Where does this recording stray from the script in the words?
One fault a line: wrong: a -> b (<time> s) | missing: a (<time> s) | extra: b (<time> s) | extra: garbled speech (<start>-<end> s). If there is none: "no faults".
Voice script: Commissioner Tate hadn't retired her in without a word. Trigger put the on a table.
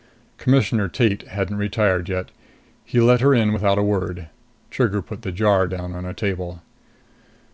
extra: yet He let (2.1 s)
extra: jar down (5.3 s)